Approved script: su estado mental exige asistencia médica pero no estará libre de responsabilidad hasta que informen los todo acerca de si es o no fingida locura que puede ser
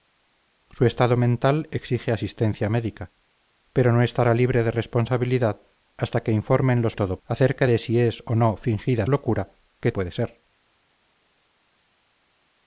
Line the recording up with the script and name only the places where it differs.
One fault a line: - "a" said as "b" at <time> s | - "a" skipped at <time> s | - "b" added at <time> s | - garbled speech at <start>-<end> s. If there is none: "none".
none